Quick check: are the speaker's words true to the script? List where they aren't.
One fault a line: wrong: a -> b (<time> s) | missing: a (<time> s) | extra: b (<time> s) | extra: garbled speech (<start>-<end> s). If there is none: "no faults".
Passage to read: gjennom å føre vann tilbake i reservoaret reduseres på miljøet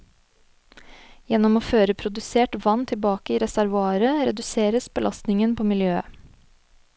extra: produsert (2.0 s)
extra: belastningen (5.0 s)